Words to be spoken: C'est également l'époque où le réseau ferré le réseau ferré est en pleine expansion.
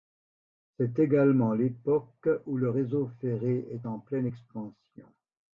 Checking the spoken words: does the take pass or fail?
fail